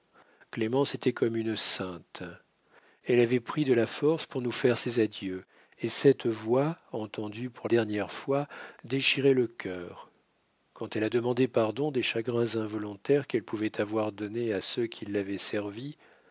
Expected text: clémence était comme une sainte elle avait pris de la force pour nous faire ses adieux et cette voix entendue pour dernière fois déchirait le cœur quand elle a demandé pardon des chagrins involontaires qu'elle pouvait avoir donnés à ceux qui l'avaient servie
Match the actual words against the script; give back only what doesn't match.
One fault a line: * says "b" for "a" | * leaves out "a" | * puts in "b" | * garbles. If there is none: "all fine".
all fine